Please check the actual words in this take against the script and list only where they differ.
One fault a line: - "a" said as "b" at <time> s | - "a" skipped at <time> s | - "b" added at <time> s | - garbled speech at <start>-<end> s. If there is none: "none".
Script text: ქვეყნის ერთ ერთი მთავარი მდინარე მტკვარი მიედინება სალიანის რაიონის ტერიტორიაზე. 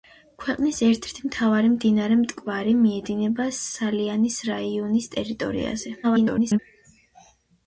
- garbled speech at 6.0-6.6 s